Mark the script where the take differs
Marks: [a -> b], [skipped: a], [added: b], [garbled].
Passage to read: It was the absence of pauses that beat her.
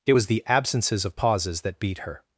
It was the [absence -> absences] of pauses that beat her.